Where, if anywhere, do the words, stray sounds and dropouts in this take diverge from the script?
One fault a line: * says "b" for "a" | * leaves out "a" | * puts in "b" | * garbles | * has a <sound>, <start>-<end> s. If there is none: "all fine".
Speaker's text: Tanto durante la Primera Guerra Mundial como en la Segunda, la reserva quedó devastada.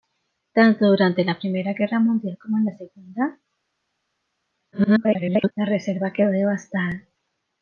* garbles